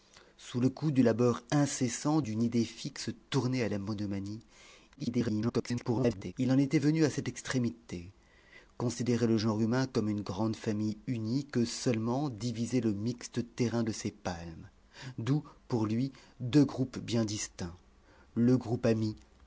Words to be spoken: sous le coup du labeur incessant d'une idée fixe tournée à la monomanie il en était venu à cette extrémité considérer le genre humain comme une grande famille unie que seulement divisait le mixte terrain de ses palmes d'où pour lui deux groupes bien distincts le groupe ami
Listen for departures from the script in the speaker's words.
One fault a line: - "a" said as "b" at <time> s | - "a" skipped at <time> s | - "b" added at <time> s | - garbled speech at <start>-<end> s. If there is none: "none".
- garbled speech at 4.9-6.3 s